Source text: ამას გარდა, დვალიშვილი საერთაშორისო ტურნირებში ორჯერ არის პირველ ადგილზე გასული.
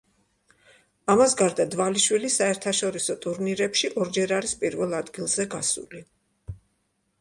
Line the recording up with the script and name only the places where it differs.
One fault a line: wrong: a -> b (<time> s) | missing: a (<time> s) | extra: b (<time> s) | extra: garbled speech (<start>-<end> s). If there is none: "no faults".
no faults